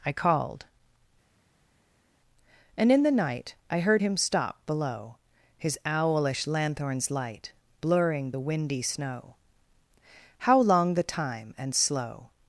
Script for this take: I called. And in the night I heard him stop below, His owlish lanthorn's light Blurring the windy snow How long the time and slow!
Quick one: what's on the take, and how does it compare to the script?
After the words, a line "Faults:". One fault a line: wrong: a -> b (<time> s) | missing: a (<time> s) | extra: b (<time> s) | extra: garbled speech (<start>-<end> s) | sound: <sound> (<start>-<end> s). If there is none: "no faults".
I called. And in the night I heard him stop below, His owlish lanthorn's light Blurring the windy snow How long the time and slow!
Faults:
no faults